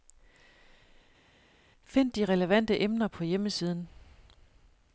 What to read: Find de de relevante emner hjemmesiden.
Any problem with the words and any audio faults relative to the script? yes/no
yes